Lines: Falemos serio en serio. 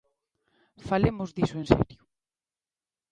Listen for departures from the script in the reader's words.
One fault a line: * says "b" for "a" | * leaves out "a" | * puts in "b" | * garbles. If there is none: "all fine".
* says "diso" for "serio"